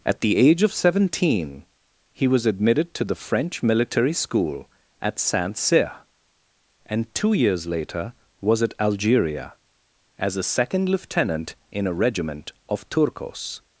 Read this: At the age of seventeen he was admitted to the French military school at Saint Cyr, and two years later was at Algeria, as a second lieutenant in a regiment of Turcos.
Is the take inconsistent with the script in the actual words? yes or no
no